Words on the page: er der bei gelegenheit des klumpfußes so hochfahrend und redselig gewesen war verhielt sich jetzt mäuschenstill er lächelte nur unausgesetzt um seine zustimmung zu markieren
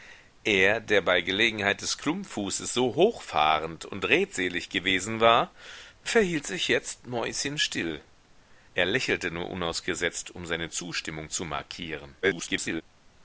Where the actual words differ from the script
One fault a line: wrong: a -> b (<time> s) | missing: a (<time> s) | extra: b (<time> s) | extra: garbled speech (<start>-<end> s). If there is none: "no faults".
extra: garbled speech (12.2-12.8 s)